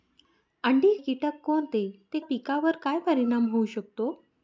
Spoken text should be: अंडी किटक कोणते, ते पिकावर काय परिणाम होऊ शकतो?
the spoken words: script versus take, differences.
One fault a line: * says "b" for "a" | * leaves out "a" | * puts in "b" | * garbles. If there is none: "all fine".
all fine